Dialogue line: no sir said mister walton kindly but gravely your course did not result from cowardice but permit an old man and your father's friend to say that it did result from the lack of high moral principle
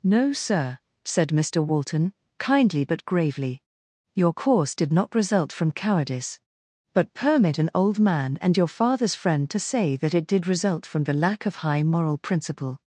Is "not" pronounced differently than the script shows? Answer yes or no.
no